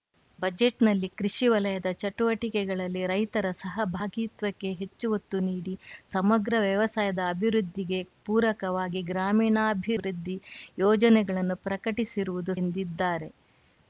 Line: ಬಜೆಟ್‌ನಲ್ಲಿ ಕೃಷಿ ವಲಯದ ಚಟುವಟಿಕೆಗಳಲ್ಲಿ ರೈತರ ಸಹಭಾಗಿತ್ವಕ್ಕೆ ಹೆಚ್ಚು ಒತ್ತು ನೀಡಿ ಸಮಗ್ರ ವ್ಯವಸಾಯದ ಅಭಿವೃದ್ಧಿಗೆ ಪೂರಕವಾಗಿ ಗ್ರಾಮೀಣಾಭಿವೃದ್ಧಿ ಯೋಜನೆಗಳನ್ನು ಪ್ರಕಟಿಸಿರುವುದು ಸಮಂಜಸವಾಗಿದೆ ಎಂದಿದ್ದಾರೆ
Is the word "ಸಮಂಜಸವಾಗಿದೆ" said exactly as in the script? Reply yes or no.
no